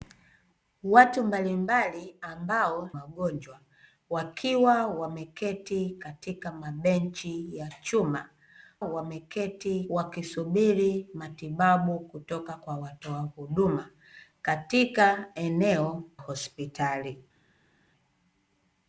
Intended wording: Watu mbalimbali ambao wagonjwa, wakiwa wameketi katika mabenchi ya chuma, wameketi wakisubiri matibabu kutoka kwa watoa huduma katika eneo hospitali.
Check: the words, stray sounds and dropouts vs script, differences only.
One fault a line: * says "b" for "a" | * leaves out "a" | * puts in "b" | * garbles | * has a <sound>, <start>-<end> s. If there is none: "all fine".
all fine